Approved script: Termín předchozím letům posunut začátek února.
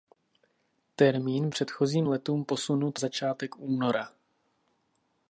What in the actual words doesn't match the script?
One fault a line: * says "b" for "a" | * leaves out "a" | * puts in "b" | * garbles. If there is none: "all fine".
all fine